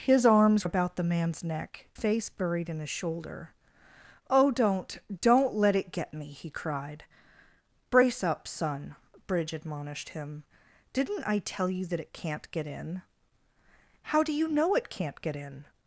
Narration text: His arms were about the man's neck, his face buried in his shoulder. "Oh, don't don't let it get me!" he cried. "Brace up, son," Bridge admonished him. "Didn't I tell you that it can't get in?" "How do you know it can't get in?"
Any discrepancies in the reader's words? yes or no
yes